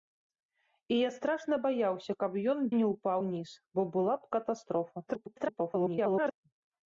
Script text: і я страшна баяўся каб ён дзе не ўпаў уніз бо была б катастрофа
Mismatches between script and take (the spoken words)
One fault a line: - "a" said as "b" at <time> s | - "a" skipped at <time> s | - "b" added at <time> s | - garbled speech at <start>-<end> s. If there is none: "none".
- "дзе" skipped at 2.6 s
- garbled speech at 5.1-6.3 s